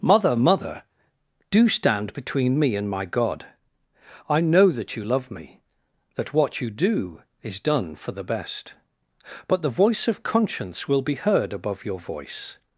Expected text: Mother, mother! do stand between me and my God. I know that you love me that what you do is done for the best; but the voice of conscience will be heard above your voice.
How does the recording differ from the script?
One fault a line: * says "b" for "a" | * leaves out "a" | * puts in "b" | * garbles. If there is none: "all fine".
all fine